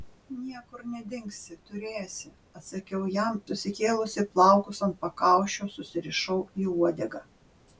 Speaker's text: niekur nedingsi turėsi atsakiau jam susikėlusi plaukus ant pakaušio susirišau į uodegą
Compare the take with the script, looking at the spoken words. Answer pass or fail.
pass